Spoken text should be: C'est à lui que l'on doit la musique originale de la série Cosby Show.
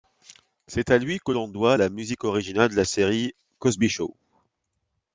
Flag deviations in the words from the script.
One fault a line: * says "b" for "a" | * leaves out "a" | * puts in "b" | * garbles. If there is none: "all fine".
all fine